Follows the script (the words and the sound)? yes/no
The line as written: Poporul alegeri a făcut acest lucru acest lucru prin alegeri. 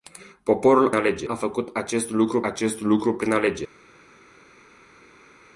yes